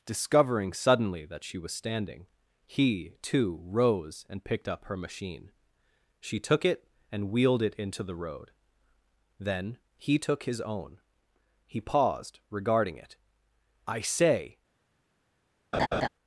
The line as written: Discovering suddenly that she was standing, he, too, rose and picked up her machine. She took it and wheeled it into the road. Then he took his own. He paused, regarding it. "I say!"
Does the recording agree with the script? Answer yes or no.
yes